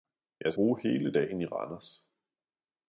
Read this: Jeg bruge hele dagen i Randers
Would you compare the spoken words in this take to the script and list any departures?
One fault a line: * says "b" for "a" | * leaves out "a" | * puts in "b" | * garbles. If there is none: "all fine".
all fine